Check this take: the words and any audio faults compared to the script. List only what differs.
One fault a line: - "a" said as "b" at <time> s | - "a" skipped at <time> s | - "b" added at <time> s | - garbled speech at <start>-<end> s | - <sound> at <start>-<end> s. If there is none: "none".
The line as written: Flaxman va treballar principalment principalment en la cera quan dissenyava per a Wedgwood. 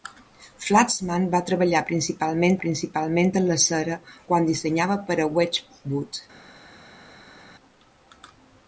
none